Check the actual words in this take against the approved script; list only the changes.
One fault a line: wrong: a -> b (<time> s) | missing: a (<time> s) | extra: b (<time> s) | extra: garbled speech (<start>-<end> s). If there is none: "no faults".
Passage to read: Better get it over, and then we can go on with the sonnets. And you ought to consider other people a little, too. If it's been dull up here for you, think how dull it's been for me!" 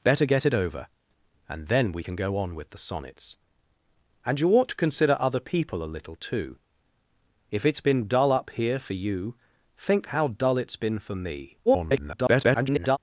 extra: garbled speech (11.7-13.0 s)